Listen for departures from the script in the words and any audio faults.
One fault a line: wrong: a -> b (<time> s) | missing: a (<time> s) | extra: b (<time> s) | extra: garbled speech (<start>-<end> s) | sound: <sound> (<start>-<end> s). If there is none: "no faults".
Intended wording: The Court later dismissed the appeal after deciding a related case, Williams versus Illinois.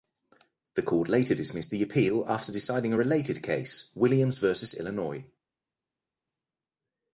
no faults